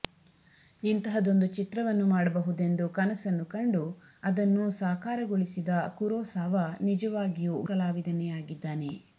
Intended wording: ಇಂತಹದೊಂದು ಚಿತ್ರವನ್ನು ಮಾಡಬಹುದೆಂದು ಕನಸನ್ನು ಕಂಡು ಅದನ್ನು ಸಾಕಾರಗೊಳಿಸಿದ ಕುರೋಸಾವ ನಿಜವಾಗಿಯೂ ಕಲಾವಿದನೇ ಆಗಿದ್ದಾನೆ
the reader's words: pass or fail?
pass